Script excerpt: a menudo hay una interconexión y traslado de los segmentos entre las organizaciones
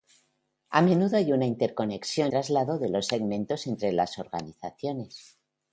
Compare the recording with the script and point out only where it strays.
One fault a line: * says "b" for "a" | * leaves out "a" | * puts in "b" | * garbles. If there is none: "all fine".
* leaves out "y"